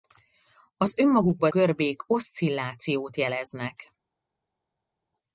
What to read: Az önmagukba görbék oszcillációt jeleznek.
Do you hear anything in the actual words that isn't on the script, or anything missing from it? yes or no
no